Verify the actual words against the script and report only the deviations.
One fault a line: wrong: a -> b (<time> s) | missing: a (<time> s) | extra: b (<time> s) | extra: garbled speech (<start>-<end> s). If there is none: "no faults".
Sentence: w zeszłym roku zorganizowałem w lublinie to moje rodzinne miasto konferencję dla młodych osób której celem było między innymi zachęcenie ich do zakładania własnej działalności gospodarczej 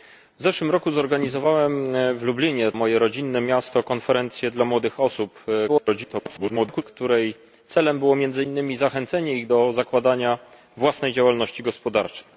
missing: to (2.7 s)
extra: garbled speech (5.7-6.8 s)